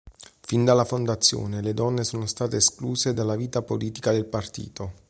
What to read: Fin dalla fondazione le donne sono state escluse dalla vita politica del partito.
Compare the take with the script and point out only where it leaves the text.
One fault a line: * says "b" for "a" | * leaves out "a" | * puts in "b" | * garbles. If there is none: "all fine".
all fine